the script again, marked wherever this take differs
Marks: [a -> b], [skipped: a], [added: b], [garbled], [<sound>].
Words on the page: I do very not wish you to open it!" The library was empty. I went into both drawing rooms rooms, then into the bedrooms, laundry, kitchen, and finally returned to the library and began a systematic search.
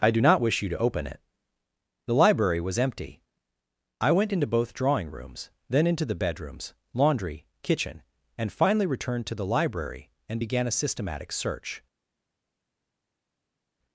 I do [skipped: very] not wish you to open it!" The library was empty. I went into both drawing rooms [skipped: rooms,] then into the bedrooms, laundry, kitchen, and finally returned to the library and began a systematic search.